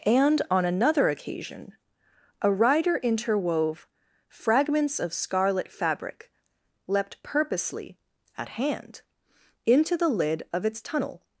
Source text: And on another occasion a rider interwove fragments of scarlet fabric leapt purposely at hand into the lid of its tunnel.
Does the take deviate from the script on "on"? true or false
false